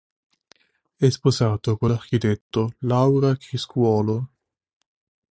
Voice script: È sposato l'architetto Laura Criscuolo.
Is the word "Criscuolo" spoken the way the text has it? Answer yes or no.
yes